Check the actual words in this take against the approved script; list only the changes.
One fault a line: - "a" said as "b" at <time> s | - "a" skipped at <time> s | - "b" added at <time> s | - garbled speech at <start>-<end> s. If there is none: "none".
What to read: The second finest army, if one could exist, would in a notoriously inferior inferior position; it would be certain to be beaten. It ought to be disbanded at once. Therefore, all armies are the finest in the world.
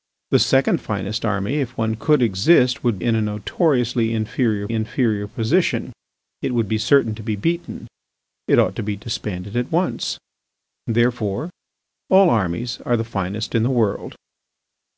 none